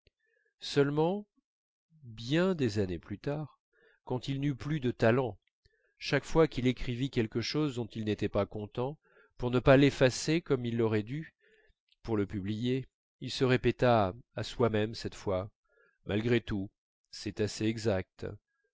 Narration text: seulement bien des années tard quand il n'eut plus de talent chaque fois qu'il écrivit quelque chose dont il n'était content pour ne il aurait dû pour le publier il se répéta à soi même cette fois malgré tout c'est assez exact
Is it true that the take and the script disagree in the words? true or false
true